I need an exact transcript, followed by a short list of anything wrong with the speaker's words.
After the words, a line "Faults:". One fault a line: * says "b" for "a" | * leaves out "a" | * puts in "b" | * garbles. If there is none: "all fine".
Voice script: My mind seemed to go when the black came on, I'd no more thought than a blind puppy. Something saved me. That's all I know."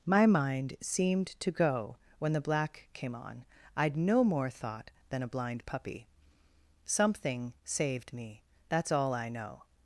My mind seemed to go when the black came on, I'd no more thought than a blind puppy. Something saved me. That's all I know."
Faults:
all fine